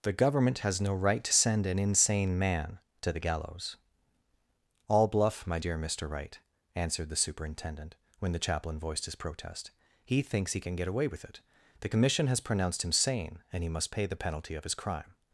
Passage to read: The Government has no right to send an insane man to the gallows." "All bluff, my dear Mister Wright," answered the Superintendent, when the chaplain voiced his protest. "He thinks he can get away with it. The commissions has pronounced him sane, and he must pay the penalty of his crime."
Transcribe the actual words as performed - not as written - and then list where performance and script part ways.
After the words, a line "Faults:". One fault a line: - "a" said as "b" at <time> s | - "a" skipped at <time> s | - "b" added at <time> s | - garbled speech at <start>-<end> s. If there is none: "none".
The Government has no right to send an insane man to the gallows." "All bluff, my dear Mister Wright," answered the Superintendent, when the chaplain voiced his protest. "He thinks he can get away with it. The commission has pronounced him sane, and he must pay the penalty of his crime."
Faults:
- "commissions" said as "commission" at 11.9 s